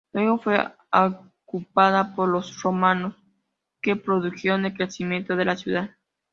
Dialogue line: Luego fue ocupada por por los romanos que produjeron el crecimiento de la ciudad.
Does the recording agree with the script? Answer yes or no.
no